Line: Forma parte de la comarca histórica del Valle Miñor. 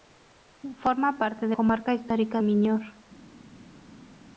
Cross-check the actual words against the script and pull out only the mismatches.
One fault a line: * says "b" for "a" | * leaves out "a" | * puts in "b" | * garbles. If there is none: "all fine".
* leaves out "la"
* leaves out "del Valle"